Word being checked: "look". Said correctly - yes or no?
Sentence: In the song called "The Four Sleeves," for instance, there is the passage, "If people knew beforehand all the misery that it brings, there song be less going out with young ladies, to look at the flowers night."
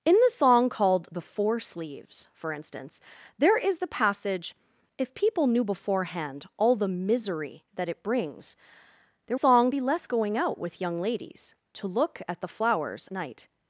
yes